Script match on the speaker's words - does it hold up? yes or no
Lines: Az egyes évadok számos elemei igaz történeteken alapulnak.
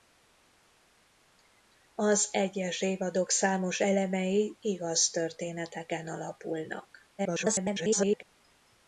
no